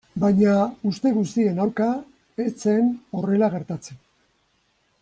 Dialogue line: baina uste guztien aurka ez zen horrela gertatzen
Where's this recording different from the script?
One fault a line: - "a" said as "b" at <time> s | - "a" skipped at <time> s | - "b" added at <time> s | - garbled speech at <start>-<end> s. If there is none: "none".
none